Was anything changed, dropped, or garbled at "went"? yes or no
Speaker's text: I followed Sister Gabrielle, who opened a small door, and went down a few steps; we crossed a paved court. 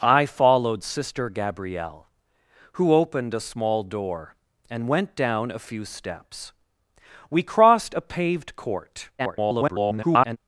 no